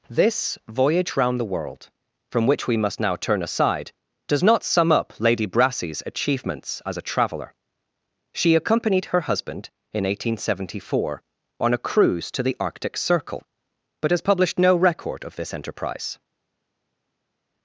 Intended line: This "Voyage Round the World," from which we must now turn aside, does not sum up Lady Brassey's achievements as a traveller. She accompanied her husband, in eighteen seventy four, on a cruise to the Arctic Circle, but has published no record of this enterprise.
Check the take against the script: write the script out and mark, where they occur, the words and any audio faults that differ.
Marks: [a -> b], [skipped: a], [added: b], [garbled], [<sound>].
This "Voyage Round the World," from which we must now turn aside, does not sum up Lady Brassey's achievements as a traveller. She accompanied her husband, in eighteen seventy four, on a cruise to the Arctic Circle, but has published no record of this enterprise.